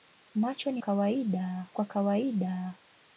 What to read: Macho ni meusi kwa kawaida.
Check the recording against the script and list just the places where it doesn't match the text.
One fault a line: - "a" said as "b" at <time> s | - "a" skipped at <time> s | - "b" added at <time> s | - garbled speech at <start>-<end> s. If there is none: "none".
- "meusi" said as "kawaida" at 0.8 s